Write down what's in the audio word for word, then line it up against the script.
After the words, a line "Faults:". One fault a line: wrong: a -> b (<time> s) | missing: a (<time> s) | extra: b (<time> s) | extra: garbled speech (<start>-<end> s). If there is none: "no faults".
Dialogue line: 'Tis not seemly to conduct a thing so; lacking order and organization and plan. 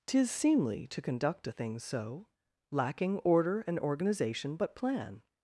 'Tis seemly to conduct a thing so; lacking order and organization but plan.
Faults:
missing: not (0.3 s)
wrong: and -> but (4.5 s)